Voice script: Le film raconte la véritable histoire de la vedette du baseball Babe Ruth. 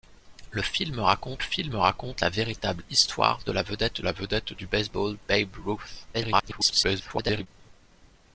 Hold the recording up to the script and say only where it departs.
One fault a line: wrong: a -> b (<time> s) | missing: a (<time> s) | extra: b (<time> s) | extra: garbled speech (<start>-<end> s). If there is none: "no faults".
extra: film raconte (1.4 s)
extra: la vedette (4.0 s)
extra: garbled speech (6.1-7.5 s)